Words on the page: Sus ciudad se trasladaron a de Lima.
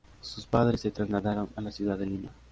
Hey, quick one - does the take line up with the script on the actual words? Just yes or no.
no